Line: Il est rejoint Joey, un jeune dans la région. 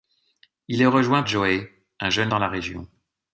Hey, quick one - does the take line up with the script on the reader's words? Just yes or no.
yes